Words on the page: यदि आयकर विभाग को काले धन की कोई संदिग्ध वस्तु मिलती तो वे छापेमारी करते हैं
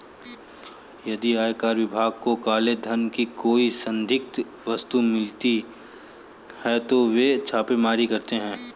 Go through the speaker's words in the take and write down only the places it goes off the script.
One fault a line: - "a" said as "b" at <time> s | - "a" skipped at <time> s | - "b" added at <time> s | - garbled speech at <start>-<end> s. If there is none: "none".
- "है" added at 6.6 s